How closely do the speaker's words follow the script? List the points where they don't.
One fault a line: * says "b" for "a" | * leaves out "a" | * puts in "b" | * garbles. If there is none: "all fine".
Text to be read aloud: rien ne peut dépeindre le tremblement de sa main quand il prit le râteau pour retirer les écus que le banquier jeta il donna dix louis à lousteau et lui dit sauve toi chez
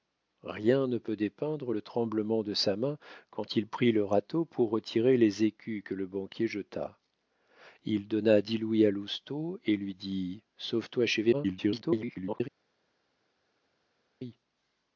* garbles